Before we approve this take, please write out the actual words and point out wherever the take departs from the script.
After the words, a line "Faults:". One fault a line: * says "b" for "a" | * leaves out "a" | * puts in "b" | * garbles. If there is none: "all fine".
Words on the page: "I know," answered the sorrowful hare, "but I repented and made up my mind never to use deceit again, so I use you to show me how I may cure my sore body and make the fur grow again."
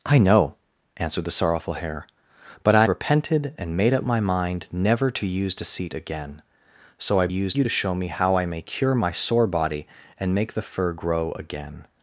"I know," answered the sorrowful hare, "but I repented and made up my mind never to use deceit again, so I use you to show me how I may cure my sore body and make the fur grow again."
Faults:
all fine